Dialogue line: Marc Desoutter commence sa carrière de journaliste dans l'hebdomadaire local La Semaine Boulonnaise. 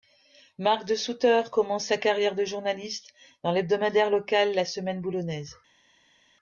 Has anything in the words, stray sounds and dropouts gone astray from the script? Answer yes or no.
no